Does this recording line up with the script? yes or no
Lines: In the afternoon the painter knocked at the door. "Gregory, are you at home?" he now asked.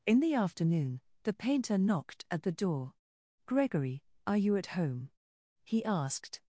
no